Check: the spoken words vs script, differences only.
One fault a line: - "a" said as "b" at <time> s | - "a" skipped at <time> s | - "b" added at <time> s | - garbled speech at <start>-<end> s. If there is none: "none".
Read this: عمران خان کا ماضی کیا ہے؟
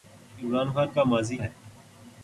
- "کیا" skipped at 1.4 s